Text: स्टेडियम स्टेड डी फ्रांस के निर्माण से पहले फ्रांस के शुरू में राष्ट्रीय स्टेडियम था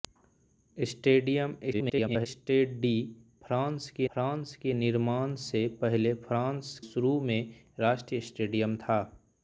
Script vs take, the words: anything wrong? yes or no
yes